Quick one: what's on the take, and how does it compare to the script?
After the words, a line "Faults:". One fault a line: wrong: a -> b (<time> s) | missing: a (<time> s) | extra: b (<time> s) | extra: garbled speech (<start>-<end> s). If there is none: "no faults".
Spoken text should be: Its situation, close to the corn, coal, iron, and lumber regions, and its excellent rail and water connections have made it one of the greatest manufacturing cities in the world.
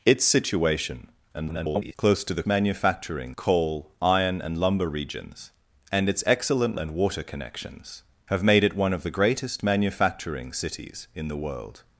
Its situation, [garbled] close to the manufacturing, coal, iron, and lumber regions, and its excellent and water connections have made it one of the greatest manufacturing cities in the world.
Faults:
extra: garbled speech (1.3-1.9 s)
wrong: corn -> manufacturing (2.5 s)
missing: rail (6.8 s)